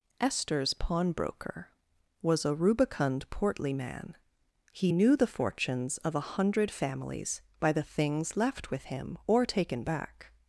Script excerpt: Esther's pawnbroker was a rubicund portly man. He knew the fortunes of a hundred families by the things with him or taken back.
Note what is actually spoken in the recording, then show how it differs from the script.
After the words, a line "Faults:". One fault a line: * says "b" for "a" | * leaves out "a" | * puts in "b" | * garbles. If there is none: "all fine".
Esther's pawnbroker was a rubicund portly man. He knew the fortunes of a hundred families by the things left with him or taken back.
Faults:
* puts in "left"